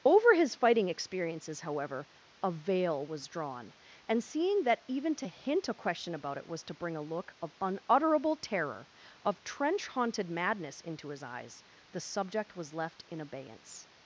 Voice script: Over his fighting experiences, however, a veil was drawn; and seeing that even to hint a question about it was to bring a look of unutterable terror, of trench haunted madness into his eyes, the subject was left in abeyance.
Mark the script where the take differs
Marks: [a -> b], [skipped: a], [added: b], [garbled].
Over his fighting experiences, however, a veil was drawn; and seeing that even to hint a question about it was to bring a look of unutterable terror, of trench haunted madness into his eyes, the subject was left in abeyance.